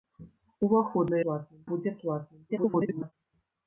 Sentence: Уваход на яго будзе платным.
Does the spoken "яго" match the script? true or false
false